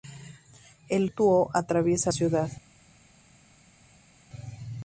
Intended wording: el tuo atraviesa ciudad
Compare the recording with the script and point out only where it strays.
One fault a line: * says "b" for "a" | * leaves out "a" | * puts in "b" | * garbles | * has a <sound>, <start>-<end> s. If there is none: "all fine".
all fine